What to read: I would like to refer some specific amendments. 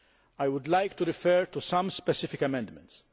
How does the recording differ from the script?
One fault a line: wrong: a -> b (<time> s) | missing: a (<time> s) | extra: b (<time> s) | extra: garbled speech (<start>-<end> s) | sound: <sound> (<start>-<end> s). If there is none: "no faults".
extra: to (1.4 s)